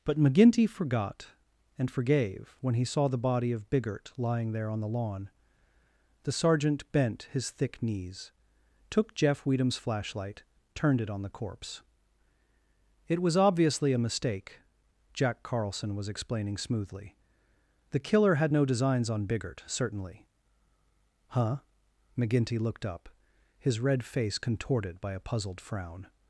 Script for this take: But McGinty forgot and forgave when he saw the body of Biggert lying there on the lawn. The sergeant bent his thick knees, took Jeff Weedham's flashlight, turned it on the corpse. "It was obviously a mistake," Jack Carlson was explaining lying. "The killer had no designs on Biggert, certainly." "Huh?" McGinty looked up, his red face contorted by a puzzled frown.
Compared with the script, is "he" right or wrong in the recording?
right